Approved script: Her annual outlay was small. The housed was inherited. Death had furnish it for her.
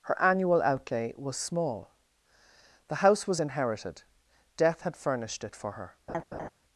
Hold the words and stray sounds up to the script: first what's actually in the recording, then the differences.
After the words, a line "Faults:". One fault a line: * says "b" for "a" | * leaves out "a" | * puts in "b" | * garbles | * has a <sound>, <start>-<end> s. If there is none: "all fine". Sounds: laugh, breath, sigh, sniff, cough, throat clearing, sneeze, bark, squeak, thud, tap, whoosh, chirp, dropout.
Her annual outlay was small. The house was inherited. Death had furnished it for her.
Faults:
* says "house" for "housed"
* says "furnished" for "furnish"
* has a laugh, 6.1-6.5 s